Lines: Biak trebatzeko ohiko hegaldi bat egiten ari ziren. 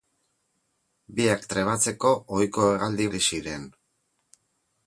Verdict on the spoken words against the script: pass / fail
fail